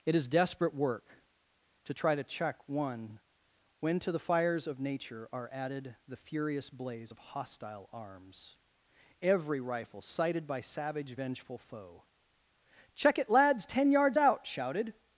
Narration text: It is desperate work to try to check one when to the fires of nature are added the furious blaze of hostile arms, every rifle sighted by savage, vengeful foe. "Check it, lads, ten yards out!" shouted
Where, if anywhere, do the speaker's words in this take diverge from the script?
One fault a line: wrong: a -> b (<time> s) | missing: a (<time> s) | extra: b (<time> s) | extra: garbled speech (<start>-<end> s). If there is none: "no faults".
no faults